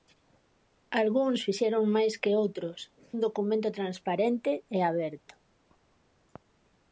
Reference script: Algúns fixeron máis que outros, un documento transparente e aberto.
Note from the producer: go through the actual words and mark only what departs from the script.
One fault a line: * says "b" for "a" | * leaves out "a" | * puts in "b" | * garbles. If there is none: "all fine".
all fine